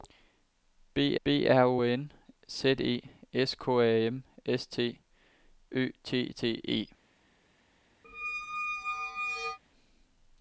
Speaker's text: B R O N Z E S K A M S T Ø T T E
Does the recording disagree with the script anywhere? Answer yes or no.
yes